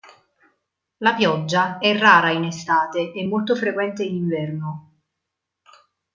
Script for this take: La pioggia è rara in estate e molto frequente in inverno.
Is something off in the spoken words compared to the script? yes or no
no